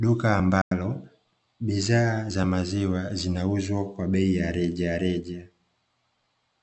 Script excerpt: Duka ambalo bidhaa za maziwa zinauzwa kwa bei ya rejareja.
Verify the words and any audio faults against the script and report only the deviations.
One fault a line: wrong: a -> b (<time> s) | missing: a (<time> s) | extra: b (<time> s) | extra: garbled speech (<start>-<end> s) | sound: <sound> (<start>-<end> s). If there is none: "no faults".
sound: dropout (0.6-0.7 s)